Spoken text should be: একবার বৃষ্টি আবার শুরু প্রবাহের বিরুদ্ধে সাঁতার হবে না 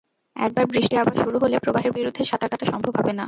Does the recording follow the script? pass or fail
fail